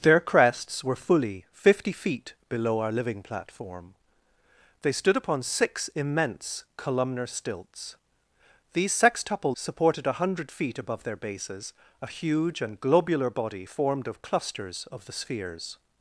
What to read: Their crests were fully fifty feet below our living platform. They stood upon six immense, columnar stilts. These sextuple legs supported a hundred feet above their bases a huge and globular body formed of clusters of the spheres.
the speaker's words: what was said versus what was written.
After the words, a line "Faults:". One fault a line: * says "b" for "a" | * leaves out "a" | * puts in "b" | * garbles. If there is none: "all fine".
Their crests were fully fifty feet below our living platform. They stood upon six immense, columnar stilts. These sextuple supported a hundred feet above their bases a huge and globular body formed of clusters of the spheres.
Faults:
* leaves out "legs"